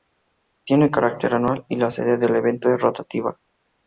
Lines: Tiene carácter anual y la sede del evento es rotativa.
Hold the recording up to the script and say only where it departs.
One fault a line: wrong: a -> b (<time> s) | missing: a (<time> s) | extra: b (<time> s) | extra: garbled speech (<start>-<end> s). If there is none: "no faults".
no faults